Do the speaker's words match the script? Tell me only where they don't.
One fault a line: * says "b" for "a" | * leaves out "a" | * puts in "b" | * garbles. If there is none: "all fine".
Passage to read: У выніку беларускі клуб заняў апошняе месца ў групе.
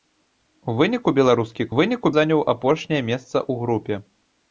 * says "выніку" for "клуб"